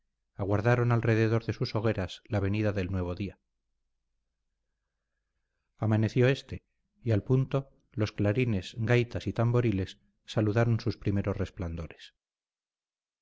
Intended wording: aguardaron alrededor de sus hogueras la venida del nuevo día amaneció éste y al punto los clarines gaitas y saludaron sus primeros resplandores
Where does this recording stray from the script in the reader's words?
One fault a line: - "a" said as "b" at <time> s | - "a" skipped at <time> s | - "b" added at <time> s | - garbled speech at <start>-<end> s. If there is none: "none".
- "tamboriles" added at 9.3 s